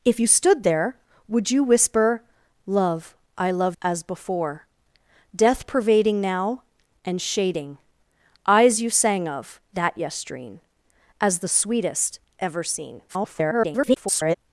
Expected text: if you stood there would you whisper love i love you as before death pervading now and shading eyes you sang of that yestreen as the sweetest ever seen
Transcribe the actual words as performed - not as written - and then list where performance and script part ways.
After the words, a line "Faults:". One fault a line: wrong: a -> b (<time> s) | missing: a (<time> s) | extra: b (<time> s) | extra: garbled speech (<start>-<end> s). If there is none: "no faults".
if you stood there would you whisper love i love as before death pervading now and shading eyes you sang of that yestreen as the sweetest ever seen [garbled]
Faults:
missing: you (3.8 s)
extra: garbled speech (13.1-14.4 s)